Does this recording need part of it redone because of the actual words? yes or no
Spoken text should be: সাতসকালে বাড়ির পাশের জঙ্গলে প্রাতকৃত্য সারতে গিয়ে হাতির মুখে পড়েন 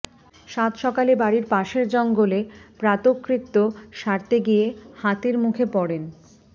no